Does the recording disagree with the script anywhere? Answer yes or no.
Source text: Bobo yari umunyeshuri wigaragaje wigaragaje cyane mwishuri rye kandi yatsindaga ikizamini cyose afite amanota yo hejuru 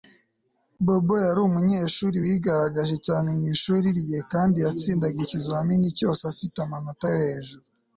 yes